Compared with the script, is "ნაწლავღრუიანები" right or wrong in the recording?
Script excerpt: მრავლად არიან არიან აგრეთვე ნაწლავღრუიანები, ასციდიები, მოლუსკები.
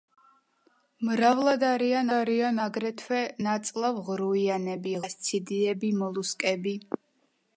right